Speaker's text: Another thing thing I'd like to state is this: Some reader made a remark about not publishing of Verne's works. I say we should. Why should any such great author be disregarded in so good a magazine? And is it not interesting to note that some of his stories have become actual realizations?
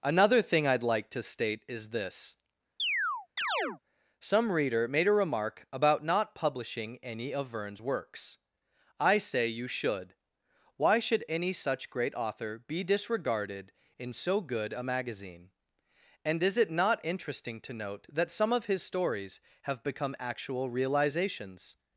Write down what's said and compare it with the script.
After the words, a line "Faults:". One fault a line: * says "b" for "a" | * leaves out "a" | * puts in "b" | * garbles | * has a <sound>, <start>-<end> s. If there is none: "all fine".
Another thing I'd like to state is this: Some reader made a remark about not publishing any of Verne's works. I say you should. Why should any such great author be disregarded in so good a magazine? And is it not interesting to note that some of his stories have become actual realizations?
Faults:
* leaves out "thing"
* has a chirp, 2.8-3.8 s
* puts in "any"
* says "you" for "we"